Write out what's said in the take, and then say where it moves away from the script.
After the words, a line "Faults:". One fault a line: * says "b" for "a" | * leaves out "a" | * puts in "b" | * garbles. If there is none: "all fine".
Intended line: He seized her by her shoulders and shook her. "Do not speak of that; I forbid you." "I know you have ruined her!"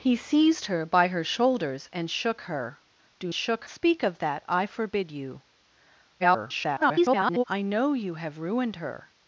He seized her by her shoulders and shook her. "Do shook speak of that; I forbid you." [garbled] "I know you have ruined her!"
Faults:
* says "shook" for "not"
* garbles